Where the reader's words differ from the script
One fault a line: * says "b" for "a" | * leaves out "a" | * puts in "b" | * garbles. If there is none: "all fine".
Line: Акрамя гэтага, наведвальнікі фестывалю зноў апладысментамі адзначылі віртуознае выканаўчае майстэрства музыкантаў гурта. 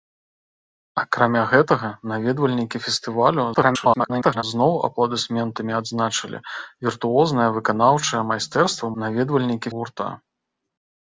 * garbles
* says "наведвальнікі" for "музыкантаў"